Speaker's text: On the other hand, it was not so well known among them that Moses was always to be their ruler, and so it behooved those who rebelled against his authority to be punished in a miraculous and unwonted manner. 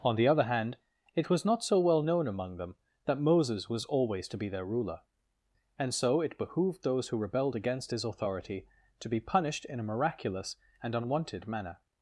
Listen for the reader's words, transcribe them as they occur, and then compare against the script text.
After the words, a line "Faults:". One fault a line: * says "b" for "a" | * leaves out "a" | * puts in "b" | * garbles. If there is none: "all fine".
On the other hand, it was not so well known among them that Moses was always to be their ruler, and so it behooved those who rebelled against his authority to be punished in a miraculous and unwonted manner.
Faults:
all fine